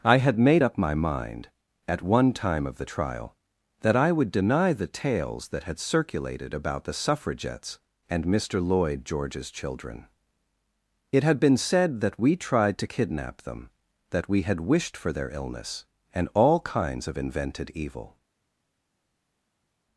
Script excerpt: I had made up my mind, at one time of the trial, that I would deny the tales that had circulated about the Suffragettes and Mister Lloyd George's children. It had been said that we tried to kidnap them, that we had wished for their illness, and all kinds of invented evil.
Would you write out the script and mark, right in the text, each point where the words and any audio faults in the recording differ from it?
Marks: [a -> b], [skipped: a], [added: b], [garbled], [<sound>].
I had made up my mind, at one time of the trial, that I would deny the tales that had circulated about the Suffragettes and Mister Lloyd George's children. It had been said that we tried to kidnap them, that we had wished for their illness, and all kinds of invented evil.